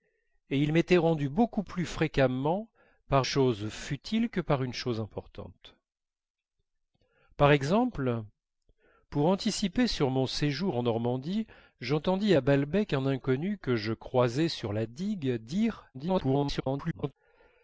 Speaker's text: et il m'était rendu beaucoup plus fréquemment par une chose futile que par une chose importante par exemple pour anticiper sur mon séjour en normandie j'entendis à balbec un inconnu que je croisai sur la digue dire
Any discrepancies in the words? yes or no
yes